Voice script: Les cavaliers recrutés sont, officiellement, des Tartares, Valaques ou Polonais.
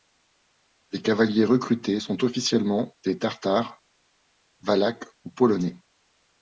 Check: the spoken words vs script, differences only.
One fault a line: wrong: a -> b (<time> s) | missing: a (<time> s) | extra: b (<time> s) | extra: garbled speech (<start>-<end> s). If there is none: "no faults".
no faults